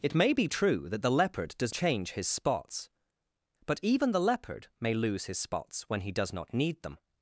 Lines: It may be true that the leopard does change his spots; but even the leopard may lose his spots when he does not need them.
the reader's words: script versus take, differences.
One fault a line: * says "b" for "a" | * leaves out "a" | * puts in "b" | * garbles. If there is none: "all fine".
all fine